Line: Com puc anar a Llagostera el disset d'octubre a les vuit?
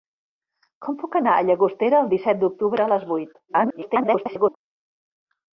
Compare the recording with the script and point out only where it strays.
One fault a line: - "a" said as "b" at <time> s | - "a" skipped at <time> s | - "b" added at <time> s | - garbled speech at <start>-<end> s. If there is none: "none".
- garbled speech at 3.5-4.6 s